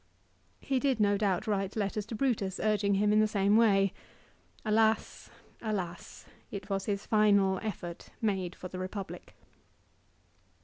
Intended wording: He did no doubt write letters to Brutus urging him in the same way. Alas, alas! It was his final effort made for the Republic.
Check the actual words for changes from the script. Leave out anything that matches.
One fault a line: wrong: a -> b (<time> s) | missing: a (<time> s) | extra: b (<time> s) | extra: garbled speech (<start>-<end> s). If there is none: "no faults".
no faults